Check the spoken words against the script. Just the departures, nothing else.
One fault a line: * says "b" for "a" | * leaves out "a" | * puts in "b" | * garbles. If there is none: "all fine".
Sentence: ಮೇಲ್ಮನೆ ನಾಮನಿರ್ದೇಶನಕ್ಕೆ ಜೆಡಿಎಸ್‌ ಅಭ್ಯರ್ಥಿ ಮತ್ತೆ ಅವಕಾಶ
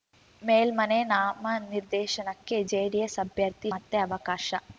all fine